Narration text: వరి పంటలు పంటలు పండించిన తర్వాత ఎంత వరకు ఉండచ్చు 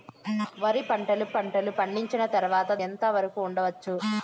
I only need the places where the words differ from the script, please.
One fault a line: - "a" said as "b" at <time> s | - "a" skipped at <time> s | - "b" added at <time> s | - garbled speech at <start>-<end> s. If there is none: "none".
none